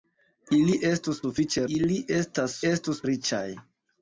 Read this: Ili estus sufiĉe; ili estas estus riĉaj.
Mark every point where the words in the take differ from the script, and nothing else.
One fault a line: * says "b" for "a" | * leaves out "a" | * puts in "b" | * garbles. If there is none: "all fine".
all fine